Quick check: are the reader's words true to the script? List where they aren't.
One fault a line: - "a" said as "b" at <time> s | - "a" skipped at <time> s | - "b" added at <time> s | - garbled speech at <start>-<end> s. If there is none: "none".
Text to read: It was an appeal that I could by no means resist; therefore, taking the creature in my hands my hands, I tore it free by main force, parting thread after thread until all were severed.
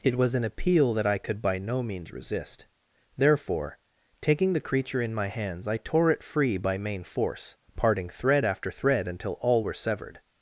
- "my hands" skipped at 5.7 s